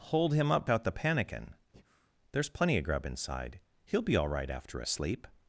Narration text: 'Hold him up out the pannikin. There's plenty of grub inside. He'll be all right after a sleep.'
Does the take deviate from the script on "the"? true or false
false